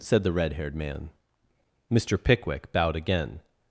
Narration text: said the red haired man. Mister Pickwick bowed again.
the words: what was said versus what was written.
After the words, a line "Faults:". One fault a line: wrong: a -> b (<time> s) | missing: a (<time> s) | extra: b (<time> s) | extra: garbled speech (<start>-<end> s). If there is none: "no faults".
said the red haired man. Mister Pickwick bowed again.
Faults:
no faults